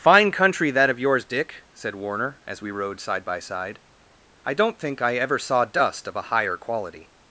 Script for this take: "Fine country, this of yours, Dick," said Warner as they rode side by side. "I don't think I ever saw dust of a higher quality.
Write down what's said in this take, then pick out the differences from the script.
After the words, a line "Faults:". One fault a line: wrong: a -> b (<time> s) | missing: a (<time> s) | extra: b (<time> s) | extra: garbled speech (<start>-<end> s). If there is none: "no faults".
"Fine country, that of yours, Dick," said Warner as we rode side by side. "I don't think I ever saw dust of a higher quality.
Faults:
wrong: this -> that (0.7 s)
wrong: they -> we (2.6 s)